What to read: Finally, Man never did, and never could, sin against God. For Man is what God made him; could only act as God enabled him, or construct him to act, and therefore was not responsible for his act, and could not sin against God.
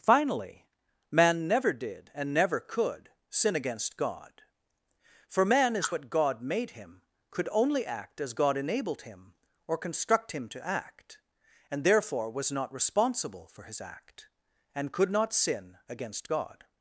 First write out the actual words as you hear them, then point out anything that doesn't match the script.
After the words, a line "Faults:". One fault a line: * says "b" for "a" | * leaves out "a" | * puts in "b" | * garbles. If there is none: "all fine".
Finally, Man never did, and never could, sin against God. For Man is what God made him; could only act as God enabled him, or construct him to act, and therefore was not responsible for his act, and could not sin against God.
Faults:
all fine